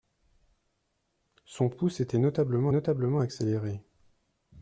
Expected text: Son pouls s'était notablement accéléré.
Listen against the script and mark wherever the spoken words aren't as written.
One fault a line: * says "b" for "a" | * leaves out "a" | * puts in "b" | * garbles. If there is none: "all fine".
* puts in "notablement"